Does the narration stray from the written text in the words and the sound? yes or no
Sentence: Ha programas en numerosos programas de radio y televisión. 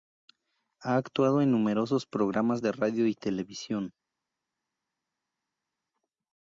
yes